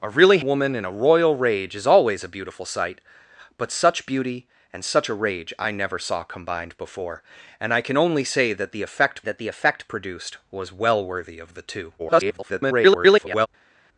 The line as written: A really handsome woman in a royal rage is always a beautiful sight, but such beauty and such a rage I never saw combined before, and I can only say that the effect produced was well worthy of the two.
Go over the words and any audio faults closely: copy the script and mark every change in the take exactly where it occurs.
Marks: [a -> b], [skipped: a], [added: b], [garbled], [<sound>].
A really [skipped: handsome] woman in a royal rage is always a beautiful sight, but such beauty and such a rage I never saw combined before, and I can only say that the effect [added: that the effect] produced was well worthy of the two. [garbled]